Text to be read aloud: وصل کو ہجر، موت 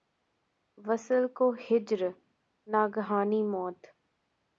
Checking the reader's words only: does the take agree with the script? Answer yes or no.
no